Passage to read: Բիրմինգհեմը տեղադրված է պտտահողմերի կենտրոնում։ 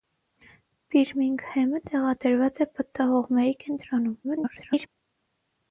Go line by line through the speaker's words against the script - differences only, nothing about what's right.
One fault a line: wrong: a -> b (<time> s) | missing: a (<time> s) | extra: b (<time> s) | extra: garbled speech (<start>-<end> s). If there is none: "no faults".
extra: garbled speech (4.2-4.9 s)